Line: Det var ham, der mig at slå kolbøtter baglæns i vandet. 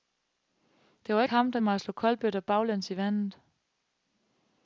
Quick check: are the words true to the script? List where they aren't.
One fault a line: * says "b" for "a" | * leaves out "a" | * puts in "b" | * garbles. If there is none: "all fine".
all fine